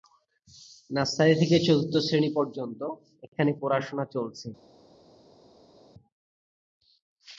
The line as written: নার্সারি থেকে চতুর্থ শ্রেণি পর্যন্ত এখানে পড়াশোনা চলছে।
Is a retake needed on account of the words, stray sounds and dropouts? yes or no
no